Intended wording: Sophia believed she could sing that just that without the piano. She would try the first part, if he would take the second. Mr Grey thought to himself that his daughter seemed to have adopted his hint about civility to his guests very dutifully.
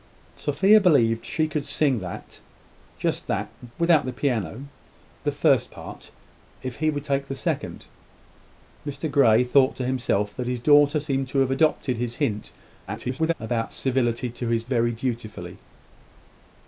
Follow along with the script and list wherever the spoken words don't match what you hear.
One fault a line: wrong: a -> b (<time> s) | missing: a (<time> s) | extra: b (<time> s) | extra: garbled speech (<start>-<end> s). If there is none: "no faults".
missing: She would try (4.7 s)
extra: garbled speech (12.9-13.3 s)
missing: guests (14.6 s)